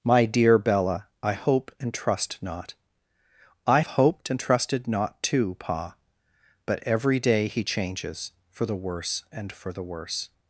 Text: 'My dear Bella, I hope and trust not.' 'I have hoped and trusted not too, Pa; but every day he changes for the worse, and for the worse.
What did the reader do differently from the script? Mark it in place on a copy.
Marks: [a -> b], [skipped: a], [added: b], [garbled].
'My dear Bella, I hope and trust not.' 'I [skipped: have] hoped and trusted not too, Pa; but every day he changes for the worse, and for the worse.